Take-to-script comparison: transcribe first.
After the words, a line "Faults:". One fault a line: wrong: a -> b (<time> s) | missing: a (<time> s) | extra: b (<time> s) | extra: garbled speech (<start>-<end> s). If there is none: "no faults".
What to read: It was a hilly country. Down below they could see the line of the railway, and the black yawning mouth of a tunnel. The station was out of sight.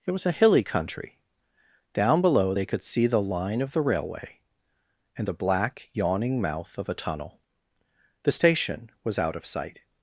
It was a hilly country. Down below they could see the line of the railway, and the black yawning mouth of a tunnel. The station was out of sight.
Faults:
no faults